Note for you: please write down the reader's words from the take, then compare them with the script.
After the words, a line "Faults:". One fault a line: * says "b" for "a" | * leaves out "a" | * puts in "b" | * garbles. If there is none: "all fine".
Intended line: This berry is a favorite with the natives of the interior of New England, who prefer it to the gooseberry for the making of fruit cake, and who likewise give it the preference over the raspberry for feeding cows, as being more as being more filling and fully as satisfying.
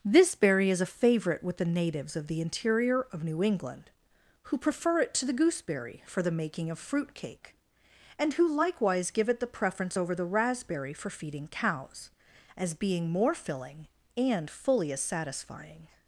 This berry is a favorite with the natives of the interior of New England, who prefer it to the gooseberry for the making of fruit cake, and who likewise give it the preference over the raspberry for feeding cows, as being more filling and fully as satisfying.
Faults:
* leaves out "as being more"